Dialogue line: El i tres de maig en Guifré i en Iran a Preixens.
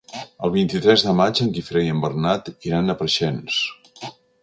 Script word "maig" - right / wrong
right